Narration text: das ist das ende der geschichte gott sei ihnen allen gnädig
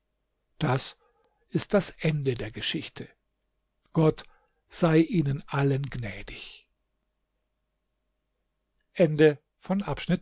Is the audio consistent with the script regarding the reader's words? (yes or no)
yes